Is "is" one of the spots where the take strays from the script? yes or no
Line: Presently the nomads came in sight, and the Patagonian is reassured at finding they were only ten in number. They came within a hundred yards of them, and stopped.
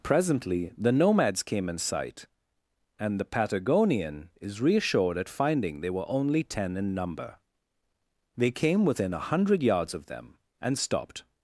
no